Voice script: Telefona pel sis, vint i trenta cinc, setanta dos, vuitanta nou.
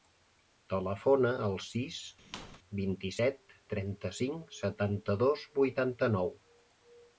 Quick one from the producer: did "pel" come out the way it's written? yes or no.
no